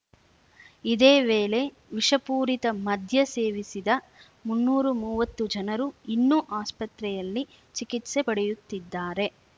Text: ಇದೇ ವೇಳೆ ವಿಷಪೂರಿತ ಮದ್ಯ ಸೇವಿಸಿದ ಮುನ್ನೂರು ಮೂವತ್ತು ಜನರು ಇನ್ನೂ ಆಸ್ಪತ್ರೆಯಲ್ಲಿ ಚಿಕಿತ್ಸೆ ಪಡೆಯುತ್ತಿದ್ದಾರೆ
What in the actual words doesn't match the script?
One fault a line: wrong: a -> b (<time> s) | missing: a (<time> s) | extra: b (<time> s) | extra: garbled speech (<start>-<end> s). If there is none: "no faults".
no faults